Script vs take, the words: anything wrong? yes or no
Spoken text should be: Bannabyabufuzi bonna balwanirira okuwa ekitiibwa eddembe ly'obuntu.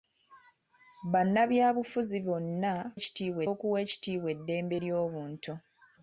yes